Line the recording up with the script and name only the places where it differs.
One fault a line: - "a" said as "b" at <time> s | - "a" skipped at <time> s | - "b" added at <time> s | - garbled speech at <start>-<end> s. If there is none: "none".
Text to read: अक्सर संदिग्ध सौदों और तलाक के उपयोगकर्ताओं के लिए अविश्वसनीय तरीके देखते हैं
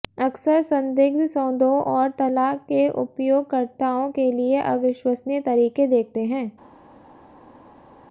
none